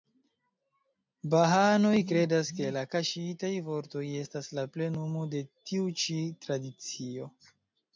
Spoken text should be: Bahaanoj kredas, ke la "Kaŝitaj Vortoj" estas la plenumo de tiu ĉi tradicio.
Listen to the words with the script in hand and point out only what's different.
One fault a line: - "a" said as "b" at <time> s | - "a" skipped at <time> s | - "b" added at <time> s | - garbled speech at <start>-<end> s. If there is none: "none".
none